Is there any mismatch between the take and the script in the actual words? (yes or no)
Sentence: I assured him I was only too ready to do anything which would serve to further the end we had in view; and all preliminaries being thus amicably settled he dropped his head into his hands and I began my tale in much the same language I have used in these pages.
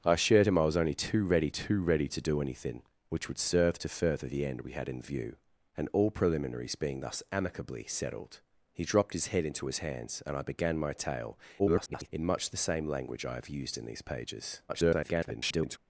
yes